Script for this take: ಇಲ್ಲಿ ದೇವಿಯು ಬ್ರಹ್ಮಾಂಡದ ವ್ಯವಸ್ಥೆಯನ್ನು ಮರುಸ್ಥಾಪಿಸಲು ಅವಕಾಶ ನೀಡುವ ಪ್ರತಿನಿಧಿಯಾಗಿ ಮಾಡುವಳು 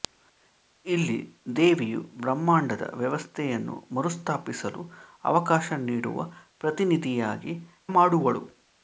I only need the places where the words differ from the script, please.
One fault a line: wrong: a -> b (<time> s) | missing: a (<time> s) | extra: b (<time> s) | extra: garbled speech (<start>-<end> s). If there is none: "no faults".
no faults